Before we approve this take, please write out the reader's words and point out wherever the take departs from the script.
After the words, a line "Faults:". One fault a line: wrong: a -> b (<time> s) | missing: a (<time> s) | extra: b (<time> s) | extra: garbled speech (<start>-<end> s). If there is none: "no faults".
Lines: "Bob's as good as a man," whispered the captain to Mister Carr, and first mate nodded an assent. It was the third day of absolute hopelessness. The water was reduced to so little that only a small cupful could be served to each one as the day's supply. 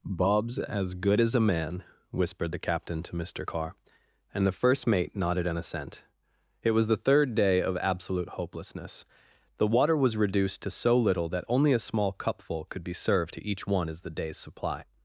"Bob's as good as a man," whispered the captain to Mister Carr, and the first mate nodded an assent. It was the third day of absolute hopelessness. The water was reduced to so little that only a small cupful could be served to each one as the day's supply.
Faults:
extra: the (4.4 s)